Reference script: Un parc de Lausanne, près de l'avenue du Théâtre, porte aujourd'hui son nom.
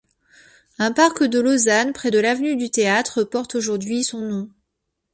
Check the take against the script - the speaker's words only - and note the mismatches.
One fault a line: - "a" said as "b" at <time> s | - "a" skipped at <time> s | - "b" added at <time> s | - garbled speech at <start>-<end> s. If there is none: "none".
none